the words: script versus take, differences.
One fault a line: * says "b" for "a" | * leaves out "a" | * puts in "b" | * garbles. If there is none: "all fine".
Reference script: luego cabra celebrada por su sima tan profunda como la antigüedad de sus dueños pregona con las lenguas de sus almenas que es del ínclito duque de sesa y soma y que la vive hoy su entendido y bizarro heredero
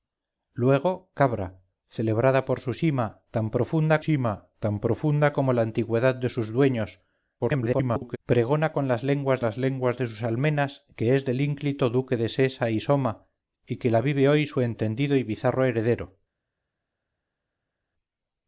* puts in "sima tan profunda"
* garbles
* puts in "las lenguas"